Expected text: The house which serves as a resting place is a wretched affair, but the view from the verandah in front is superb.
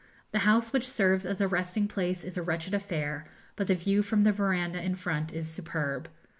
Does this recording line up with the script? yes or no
yes